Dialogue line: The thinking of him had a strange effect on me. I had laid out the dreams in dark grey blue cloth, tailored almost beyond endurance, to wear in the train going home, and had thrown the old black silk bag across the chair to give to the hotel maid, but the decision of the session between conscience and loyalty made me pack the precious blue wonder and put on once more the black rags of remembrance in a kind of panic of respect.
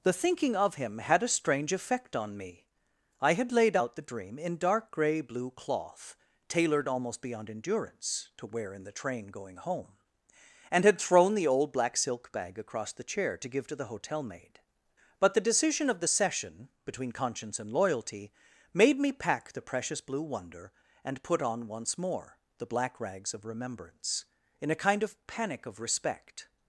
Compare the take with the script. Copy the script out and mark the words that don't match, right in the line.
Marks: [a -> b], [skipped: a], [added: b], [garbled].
The thinking of him had a strange effect on me. I had laid out the [dreams -> dream] in dark grey blue cloth, tailored almost beyond endurance, to wear in the train going home, and had thrown the old black silk bag across the chair to give to the hotel maid, but the decision of the session between conscience and loyalty made me pack the precious blue wonder and put on once more the black rags of remembrance in a kind of panic of respect.